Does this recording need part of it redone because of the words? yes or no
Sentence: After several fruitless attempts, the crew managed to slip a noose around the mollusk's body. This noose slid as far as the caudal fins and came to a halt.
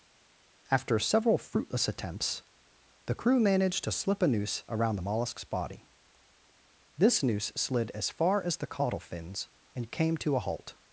no